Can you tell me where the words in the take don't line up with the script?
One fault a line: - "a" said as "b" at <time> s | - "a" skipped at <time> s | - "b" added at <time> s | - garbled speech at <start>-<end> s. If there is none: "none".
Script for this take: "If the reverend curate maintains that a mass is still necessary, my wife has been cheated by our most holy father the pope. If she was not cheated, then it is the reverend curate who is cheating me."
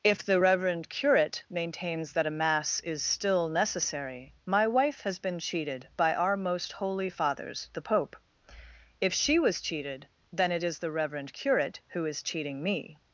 - "father" said as "fathers" at 7.1 s
- "not" skipped at 9.6 s